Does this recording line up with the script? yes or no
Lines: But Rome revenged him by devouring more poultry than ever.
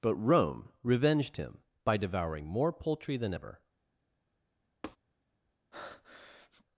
yes